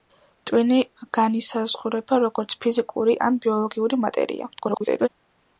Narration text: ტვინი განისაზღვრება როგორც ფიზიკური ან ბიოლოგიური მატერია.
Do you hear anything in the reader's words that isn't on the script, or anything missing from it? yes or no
yes